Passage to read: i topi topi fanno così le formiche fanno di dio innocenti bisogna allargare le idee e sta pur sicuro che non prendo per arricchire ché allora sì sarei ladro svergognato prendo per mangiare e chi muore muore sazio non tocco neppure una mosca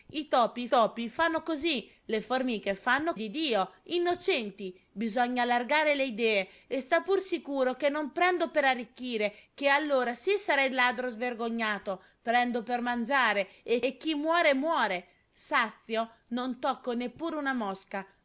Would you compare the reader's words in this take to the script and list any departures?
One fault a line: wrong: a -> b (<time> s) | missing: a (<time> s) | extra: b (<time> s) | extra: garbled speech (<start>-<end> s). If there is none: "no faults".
no faults